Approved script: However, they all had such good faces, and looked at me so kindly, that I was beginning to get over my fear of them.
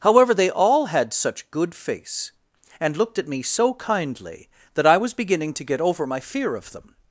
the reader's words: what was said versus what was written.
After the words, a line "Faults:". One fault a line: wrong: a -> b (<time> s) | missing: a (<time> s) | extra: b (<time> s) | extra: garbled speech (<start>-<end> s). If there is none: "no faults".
However, they all had such good face, and looked at me so kindly, that I was beginning to get over my fear of them.
Faults:
wrong: faces -> face (1.7 s)